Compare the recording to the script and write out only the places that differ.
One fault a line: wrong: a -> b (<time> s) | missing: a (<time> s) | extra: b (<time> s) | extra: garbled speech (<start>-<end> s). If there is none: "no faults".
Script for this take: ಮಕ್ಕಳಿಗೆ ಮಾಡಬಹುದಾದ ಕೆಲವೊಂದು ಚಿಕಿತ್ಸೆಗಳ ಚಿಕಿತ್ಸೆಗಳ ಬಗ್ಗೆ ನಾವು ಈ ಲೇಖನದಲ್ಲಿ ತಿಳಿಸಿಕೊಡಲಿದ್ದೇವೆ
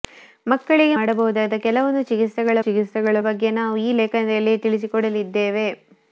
no faults